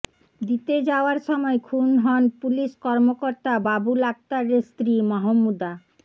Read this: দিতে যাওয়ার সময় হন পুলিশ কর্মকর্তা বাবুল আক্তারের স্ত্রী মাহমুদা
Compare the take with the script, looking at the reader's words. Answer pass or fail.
fail